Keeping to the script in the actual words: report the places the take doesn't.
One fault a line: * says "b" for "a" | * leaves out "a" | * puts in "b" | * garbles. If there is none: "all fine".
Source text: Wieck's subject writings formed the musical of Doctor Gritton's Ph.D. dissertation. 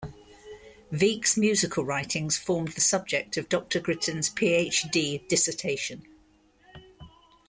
* says "musical" for "subject"
* says "subject" for "musical"